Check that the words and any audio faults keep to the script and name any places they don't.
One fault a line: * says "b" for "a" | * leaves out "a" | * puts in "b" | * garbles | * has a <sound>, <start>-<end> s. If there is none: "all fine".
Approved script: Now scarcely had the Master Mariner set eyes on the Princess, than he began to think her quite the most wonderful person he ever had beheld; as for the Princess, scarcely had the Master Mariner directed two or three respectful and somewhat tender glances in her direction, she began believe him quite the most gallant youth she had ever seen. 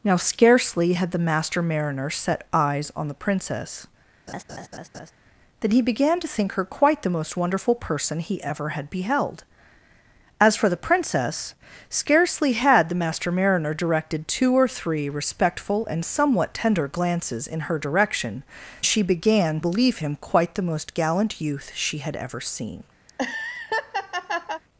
* has a laugh, 4.3-5.1 s
* has a laugh, 23.1-24.6 s